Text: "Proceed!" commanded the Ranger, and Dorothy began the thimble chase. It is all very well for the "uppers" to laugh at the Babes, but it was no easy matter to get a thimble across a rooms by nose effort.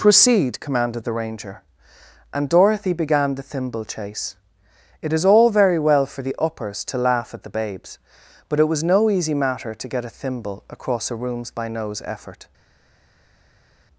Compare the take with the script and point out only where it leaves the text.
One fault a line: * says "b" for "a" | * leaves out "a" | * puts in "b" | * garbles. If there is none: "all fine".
all fine